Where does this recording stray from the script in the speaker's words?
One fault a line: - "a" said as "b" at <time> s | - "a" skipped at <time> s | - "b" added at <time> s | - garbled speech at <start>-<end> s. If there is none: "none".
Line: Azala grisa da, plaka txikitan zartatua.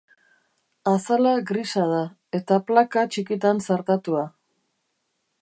- "eta" added at 2.4 s